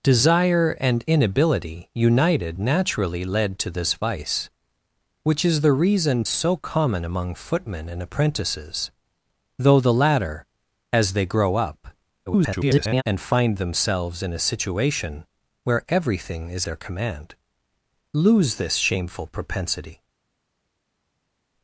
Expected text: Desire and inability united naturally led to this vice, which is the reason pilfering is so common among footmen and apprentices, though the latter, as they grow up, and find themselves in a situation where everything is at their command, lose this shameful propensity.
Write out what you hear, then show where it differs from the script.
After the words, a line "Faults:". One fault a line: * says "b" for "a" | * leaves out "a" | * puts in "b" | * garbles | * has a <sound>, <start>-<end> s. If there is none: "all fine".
Desire and inability united naturally led to this vice, which is the reason so common among footmen and apprentices, though the latter, as they grow up, [garbled] and find themselves in a situation where everything is their command, lose this shameful propensity.
Faults:
* leaves out "pilfering is"
* garbles
* leaves out "at"